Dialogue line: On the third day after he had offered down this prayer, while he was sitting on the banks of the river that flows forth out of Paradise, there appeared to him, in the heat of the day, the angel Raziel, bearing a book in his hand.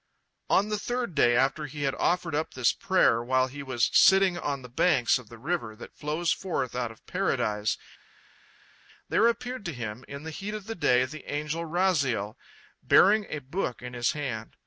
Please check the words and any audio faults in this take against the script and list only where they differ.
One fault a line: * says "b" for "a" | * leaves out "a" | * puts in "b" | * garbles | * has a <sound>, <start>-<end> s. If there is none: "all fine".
* says "up" for "down"